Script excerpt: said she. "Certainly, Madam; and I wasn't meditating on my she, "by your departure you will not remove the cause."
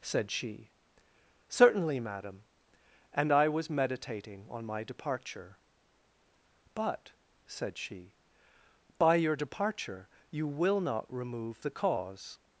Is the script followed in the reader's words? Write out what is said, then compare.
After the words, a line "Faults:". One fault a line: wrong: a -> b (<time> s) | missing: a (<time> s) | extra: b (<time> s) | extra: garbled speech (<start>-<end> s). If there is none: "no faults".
said she. "Certainly, Madam; and I was meditating on my departure." "But," said she, "by your departure you will not remove the cause."
Faults:
wrong: wasn't -> was (3.5 s)
extra: departure But said (4.8 s)